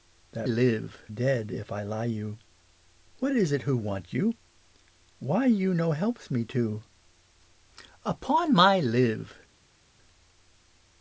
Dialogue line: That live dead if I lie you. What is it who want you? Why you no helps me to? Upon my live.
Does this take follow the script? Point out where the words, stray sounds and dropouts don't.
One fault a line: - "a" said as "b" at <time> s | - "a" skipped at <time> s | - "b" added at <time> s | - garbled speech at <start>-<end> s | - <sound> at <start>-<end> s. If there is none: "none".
none